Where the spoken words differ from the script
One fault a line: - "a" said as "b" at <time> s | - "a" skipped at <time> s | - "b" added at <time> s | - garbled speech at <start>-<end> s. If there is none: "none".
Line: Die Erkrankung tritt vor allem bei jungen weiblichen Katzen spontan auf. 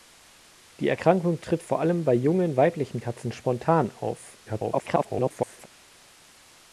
- garbled speech at 4.5-5.7 s